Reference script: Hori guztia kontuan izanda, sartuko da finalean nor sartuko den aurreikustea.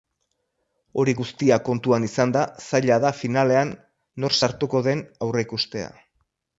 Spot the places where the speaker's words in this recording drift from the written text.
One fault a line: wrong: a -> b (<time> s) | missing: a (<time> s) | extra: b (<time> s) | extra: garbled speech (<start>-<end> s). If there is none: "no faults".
wrong: sartuko -> zaila (2.7 s)